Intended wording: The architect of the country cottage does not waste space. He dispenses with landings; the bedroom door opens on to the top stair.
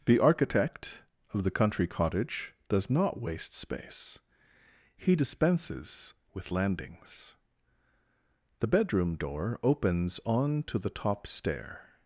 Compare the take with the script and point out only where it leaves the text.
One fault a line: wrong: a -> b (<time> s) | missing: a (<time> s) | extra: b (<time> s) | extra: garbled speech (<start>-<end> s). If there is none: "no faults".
no faults